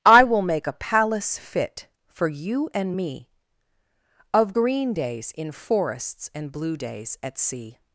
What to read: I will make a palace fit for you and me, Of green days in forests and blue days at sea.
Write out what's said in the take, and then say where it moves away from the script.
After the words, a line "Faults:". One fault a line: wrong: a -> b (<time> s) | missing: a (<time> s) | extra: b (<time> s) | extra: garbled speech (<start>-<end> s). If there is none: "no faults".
I will make a palace fit for you and me, Of green days in forests and blue days at sea.
Faults:
no faults